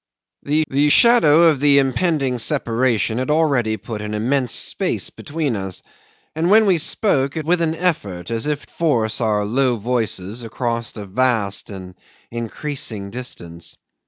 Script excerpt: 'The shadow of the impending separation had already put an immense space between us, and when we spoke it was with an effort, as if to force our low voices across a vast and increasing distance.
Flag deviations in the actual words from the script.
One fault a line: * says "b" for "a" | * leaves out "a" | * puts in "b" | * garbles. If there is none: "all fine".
* puts in "the"
* leaves out "was"
* leaves out "to"